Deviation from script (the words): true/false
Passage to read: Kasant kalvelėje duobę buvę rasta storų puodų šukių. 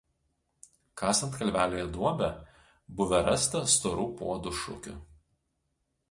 false